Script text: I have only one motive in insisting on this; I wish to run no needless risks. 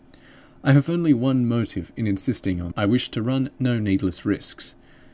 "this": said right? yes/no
no